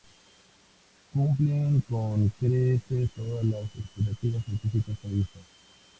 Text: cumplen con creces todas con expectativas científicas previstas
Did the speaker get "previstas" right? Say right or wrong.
right